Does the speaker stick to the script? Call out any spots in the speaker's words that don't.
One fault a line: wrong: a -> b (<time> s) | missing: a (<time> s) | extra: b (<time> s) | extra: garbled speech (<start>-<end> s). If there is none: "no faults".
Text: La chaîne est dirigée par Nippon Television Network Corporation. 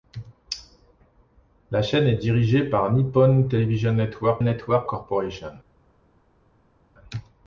extra: Network (4.4 s)